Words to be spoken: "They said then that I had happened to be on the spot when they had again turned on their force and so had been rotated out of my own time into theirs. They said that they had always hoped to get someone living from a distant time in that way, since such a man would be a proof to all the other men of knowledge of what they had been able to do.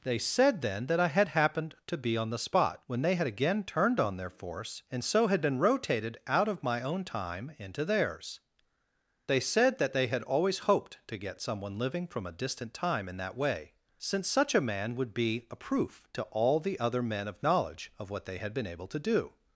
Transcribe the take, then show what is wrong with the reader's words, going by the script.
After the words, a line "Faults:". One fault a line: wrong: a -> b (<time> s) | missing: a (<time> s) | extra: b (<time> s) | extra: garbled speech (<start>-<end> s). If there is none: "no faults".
"They said then that I had happened to be on the spot when they had again turned on their force and so had been rotated out of my own time into theirs. They said that they had always hoped to get someone living from a distant time in that way, since such a man would be a proof to all the other men of knowledge of what they had been able to do.
Faults:
no faults